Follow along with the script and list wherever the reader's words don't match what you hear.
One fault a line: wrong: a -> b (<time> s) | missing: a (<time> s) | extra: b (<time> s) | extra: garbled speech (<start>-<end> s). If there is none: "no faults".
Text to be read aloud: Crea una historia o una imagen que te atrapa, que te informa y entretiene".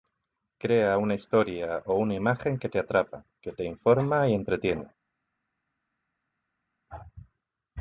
no faults